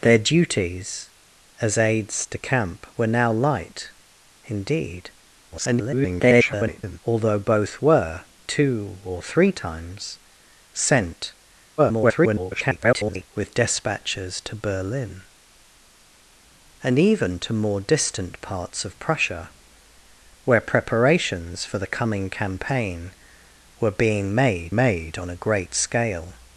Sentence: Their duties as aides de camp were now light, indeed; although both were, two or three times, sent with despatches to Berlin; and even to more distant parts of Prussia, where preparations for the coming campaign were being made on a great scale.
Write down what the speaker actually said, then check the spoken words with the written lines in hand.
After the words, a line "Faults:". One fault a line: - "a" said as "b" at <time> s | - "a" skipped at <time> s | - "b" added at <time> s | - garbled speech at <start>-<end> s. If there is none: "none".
Their duties as aides de camp were now light, indeed; [garbled] although both were, two or three times, sent [garbled] with despatches to Berlin; and even to more distant parts of Prussia, where preparations for the coming campaign were being made made on a great scale.
Faults:
- garbled speech at 5.5-7.0 s
- garbled speech at 11.8-13.3 s
- "made" added at 24.7 s